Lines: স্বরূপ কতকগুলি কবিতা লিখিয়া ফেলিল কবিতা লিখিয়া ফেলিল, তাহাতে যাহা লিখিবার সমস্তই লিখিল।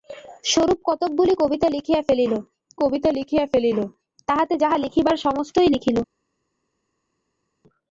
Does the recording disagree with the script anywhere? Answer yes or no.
no